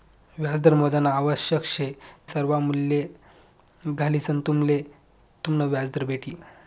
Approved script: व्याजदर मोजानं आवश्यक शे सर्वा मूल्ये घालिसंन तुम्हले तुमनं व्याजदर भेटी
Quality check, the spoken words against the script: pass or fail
pass